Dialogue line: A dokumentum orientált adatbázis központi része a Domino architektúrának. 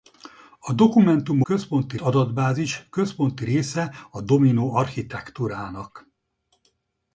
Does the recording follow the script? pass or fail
fail